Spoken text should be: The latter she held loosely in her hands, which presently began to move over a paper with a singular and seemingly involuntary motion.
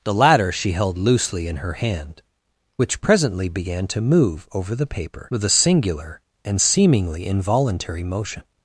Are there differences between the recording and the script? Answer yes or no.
yes